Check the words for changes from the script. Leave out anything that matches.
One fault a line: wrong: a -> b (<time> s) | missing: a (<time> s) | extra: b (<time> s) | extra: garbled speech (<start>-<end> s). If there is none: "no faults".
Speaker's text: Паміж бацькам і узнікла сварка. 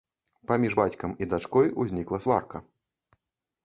extra: дачкой (1.3 s)